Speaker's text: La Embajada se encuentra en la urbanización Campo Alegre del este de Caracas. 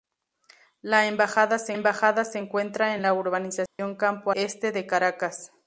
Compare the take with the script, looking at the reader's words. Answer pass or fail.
fail